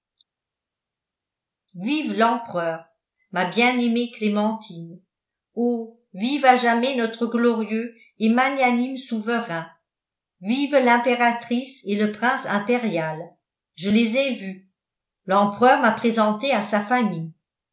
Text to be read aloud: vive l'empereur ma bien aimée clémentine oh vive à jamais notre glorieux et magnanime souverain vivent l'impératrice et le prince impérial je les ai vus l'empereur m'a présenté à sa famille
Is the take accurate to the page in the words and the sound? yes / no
yes